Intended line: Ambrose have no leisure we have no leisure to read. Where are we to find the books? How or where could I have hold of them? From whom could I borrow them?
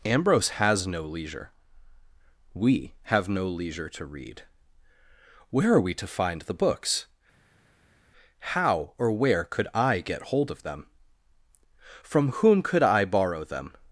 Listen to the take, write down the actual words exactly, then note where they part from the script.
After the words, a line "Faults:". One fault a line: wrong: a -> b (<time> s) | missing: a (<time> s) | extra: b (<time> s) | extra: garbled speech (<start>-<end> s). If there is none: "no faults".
Ambrose has no leisure we have no leisure to read. Where are we to find the books? How or where could I get hold of them? From whom could I borrow them?
Faults:
wrong: have -> has (0.5 s)
wrong: have -> get (10.0 s)